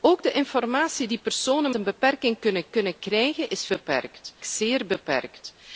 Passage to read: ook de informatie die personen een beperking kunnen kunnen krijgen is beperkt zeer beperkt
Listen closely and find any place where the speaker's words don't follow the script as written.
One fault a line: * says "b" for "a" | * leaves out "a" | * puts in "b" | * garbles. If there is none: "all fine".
all fine